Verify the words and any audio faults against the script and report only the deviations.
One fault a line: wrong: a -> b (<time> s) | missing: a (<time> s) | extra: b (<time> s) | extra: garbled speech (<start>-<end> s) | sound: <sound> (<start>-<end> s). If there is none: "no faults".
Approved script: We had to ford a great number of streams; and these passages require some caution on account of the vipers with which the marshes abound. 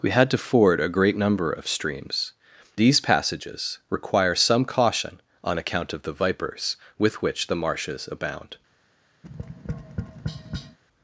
missing: and (2.3 s)
sound: tap (9.2-10.8 s)